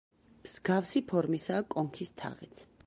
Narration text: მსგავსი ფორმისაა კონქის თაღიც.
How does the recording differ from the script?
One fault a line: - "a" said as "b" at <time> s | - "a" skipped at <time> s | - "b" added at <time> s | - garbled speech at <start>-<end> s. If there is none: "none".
none